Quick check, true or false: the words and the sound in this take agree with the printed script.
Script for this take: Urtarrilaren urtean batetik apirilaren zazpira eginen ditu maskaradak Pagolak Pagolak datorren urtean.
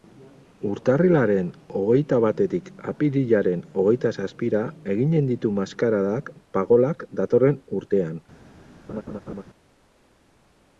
false